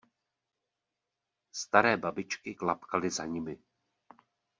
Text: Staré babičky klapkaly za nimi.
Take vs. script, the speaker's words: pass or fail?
pass